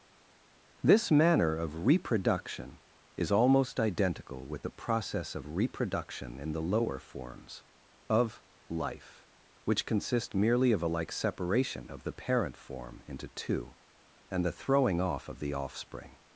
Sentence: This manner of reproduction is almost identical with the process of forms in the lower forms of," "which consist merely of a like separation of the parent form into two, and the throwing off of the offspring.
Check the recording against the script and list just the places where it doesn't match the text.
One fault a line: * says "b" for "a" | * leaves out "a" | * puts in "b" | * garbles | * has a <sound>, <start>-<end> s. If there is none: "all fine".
* says "reproduction" for "forms"
* puts in "life"